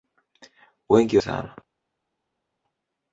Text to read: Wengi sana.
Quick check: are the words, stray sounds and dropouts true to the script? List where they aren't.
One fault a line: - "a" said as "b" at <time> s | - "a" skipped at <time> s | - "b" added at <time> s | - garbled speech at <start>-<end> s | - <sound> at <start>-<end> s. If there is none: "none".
none